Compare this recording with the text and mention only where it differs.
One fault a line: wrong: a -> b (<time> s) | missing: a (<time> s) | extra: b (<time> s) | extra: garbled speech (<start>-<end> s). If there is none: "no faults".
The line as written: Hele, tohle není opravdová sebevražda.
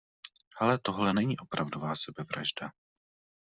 no faults